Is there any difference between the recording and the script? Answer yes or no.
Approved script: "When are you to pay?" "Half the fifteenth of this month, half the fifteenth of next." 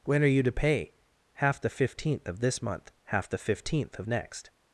no